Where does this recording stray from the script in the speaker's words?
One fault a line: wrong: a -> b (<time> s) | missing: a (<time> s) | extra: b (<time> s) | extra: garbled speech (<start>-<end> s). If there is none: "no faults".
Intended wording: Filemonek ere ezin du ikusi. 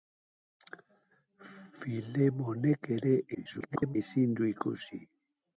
extra: garbled speech (3.3-4.0 s)